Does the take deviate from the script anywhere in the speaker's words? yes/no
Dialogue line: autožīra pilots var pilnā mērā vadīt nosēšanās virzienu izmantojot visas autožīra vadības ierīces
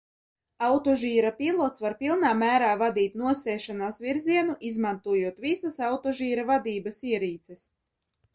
no